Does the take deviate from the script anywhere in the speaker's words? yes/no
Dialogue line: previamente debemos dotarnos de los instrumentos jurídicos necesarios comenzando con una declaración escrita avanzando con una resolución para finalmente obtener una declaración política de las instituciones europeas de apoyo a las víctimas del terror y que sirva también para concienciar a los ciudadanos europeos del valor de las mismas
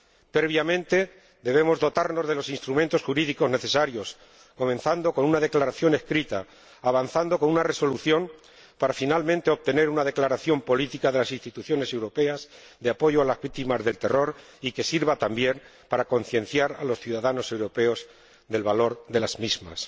no